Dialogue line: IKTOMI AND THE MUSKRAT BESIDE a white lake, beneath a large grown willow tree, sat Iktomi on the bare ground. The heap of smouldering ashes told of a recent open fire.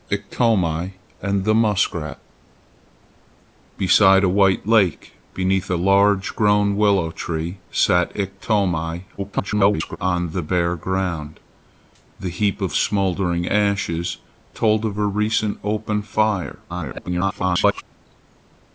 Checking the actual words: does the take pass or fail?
fail